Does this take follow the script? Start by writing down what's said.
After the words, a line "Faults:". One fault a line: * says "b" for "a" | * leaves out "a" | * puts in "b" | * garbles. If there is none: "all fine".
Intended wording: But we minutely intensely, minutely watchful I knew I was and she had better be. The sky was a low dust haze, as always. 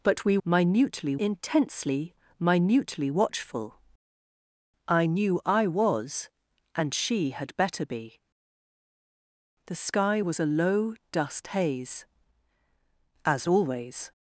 But we minutely intensely, minutely watchful I knew I was and she had better be. The sky was a low dust haze, as always.
Faults:
all fine